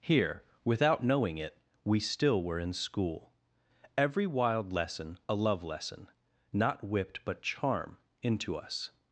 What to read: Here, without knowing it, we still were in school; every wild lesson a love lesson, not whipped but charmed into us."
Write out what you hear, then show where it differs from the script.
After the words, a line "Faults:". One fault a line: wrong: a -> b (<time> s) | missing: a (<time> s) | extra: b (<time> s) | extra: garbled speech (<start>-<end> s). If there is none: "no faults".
Here, without knowing it, we still were in school; every wild lesson a love lesson, not whipped but charm into us."
Faults:
wrong: charmed -> charm (7.4 s)